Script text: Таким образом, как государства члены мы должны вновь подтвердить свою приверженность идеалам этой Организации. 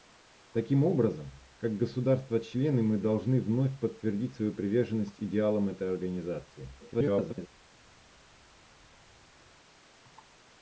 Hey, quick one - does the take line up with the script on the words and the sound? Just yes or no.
no